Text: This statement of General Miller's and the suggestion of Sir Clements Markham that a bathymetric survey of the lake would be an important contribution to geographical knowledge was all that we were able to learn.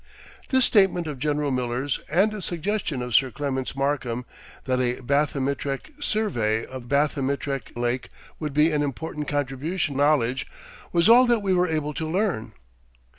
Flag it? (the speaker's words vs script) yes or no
yes